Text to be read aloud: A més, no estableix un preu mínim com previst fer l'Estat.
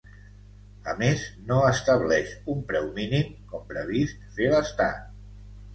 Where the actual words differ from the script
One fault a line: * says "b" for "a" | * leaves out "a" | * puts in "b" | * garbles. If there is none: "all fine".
all fine